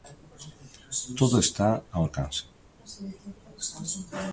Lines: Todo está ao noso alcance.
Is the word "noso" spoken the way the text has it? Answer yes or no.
no